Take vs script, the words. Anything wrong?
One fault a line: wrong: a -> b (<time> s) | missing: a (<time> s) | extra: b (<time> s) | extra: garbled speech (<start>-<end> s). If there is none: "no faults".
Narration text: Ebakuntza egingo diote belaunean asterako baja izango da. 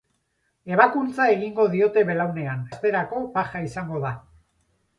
no faults